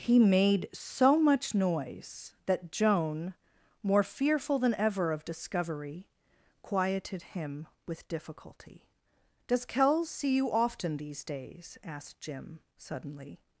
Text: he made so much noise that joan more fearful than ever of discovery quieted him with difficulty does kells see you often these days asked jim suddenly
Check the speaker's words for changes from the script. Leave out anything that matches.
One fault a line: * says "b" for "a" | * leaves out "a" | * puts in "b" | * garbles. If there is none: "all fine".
all fine